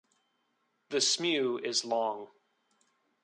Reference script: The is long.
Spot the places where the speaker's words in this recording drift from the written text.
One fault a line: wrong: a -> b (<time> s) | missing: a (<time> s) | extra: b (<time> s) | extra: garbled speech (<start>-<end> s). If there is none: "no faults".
extra: smew (1.0 s)